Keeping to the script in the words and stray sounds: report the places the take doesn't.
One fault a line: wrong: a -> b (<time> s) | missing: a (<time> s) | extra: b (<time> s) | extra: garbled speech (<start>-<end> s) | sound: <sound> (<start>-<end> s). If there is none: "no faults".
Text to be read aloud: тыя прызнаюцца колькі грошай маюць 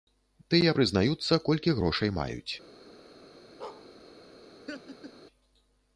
sound: bark (3.6-3.9 s)
sound: laugh (4.7-5.1 s)